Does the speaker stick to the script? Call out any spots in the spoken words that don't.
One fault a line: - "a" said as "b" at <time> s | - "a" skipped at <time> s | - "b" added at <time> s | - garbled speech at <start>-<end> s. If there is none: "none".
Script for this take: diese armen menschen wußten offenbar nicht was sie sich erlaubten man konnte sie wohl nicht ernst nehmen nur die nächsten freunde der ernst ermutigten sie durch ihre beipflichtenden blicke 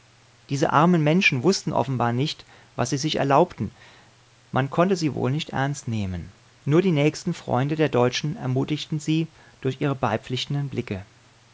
- "ernst" said as "deutschen" at 7.9 s